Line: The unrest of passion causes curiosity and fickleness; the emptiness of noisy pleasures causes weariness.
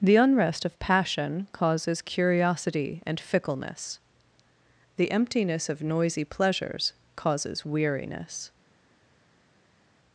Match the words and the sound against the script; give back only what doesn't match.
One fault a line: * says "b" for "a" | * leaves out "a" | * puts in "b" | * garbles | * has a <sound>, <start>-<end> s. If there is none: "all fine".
all fine